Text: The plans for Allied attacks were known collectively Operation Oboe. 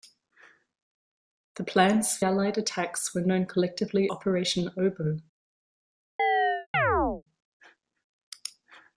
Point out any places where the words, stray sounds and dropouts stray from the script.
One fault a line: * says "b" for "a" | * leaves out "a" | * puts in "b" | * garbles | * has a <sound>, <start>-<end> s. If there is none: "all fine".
* has a chirp, 6.2-7.2 s